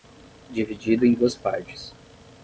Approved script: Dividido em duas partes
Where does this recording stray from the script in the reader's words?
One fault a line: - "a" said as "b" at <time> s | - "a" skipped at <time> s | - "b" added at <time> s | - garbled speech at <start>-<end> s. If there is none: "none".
none